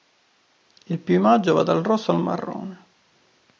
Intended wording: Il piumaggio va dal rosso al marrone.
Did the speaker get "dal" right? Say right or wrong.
right